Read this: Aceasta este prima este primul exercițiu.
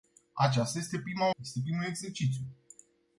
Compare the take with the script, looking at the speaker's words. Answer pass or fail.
pass